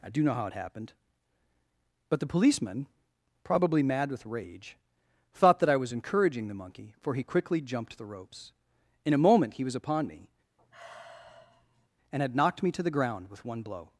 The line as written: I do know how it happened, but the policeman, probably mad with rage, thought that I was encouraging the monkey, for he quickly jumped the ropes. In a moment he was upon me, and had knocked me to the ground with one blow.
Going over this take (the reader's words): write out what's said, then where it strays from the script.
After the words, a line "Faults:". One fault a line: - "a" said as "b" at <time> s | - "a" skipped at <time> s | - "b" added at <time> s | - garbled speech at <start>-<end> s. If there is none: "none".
I do know how it happened, but the policeman, probably mad with rage, thought that I was encouraging the monkey, for he quickly jumped the ropes. In a moment he was upon me, and had knocked me to the ground with one blow.
Faults:
none